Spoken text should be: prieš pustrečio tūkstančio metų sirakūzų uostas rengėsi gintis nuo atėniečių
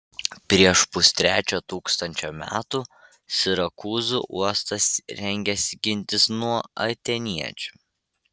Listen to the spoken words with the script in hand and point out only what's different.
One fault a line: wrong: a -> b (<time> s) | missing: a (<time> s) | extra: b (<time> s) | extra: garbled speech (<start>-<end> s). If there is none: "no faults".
no faults